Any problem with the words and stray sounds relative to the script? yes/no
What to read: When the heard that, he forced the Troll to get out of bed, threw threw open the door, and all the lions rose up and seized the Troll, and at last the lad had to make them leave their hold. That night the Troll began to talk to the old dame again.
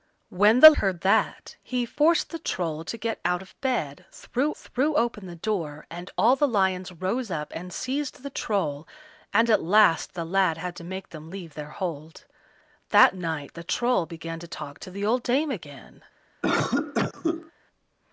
yes